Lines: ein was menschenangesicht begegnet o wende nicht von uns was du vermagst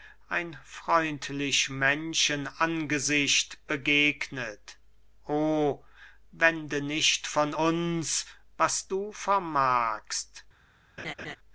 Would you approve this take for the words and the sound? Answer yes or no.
no